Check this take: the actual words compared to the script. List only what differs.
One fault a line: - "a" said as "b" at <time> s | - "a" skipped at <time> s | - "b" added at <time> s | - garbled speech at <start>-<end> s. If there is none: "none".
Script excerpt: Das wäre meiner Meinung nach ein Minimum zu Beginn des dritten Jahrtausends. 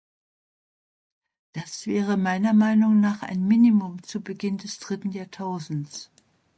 none